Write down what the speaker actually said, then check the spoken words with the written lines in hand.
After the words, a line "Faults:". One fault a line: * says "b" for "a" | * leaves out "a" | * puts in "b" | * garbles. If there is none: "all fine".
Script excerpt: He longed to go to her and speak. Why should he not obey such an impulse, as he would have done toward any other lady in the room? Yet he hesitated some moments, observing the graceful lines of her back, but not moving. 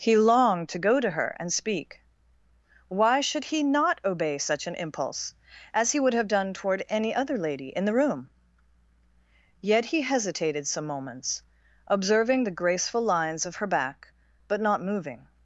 He longed to go to her and speak. Why should he not obey such an impulse, as he would have done toward any other lady in the room? Yet he hesitated some moments, observing the graceful lines of her back, but not moving.
Faults:
all fine